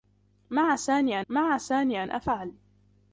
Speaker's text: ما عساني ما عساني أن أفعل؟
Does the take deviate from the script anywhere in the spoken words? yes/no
no